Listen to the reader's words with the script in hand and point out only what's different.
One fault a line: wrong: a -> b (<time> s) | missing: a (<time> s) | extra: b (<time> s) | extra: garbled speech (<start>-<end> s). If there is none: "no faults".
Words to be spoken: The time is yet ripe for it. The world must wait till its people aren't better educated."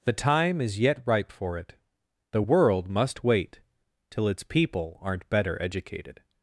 no faults